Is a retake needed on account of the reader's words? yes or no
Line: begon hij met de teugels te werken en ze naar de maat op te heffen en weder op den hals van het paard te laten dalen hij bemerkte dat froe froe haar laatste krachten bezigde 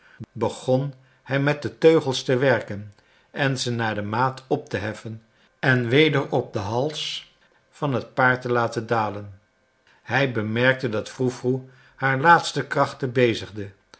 no